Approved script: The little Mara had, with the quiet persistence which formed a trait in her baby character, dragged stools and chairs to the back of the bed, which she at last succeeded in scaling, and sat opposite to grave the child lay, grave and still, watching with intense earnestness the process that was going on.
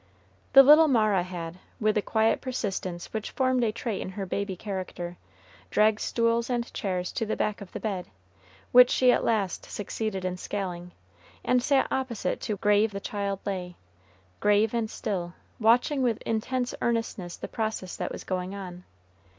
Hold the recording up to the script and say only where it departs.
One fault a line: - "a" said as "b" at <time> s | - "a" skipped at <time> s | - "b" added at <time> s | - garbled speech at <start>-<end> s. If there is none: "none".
none